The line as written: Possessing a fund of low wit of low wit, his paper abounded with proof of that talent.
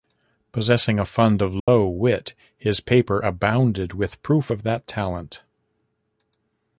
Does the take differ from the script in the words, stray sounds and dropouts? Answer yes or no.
yes